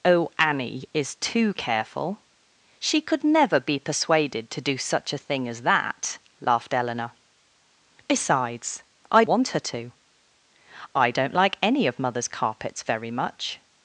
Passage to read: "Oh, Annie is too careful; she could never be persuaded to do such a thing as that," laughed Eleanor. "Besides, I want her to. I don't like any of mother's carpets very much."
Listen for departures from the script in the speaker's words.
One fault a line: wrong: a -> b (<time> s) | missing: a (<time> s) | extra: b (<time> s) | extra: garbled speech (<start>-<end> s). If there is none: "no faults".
no faults